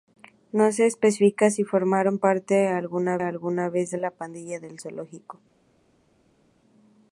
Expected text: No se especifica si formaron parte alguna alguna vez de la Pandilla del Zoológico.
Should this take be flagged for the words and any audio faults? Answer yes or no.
no